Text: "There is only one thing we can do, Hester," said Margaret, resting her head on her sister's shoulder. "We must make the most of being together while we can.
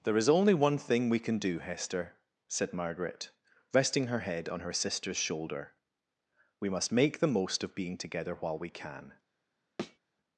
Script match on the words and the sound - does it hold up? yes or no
no